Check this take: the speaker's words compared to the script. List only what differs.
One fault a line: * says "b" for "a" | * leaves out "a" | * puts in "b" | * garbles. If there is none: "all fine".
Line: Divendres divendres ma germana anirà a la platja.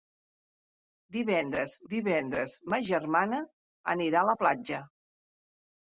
all fine